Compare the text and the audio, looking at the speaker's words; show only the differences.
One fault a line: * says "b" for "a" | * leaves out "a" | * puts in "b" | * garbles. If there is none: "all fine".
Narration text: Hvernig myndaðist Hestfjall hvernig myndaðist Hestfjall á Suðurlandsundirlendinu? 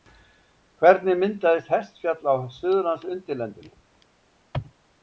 * leaves out "hvernig myndaðist Hestfjall"